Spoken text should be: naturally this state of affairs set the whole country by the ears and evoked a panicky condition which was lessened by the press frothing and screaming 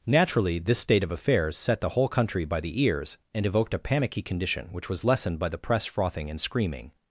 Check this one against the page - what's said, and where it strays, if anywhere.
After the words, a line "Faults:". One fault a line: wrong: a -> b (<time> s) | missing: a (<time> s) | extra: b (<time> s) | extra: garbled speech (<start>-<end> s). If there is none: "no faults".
naturally this state of affairs set the whole country by the ears and evoked a panicky condition which was lessened by the press frothing and screaming
Faults:
no faults